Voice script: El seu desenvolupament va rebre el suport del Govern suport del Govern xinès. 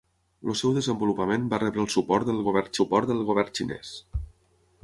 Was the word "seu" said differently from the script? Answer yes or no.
no